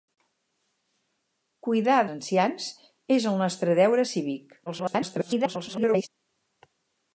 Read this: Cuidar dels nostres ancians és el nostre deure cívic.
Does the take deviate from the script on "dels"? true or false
true